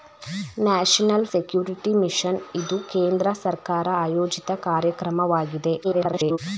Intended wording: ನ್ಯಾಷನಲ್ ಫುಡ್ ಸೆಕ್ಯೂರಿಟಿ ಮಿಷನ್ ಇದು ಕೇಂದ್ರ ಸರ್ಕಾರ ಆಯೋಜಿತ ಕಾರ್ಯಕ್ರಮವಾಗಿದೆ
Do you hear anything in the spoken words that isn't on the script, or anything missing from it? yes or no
yes